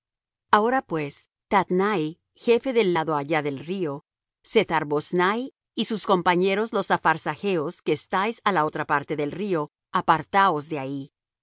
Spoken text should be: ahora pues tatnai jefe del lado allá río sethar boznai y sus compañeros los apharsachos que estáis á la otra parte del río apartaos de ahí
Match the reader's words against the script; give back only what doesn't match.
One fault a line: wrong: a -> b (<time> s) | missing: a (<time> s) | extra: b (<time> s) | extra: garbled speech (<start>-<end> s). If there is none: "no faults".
extra: del (3.4 s)